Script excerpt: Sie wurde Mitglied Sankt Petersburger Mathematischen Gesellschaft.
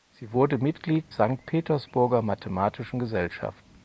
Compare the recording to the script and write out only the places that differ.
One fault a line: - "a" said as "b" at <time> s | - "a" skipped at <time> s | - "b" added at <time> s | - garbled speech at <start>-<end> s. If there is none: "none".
none